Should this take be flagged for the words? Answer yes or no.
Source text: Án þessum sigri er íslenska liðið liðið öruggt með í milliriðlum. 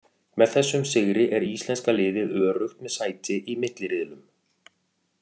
yes